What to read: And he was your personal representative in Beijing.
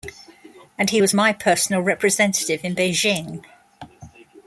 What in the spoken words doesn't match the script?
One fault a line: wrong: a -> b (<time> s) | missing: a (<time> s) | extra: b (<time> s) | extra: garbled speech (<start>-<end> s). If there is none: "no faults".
wrong: your -> my (1.1 s)